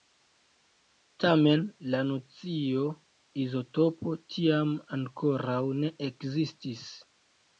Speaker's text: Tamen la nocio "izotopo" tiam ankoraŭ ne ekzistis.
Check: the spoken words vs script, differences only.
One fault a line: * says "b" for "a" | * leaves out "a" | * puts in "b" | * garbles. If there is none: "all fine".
all fine